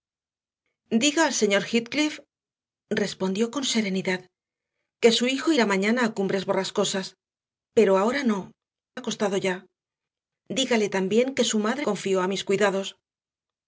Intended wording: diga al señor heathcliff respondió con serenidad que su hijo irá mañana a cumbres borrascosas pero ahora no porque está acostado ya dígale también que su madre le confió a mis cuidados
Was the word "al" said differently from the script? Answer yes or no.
no